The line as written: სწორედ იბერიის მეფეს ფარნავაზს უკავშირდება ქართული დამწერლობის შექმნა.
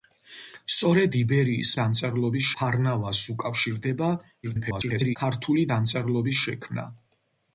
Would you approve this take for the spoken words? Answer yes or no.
no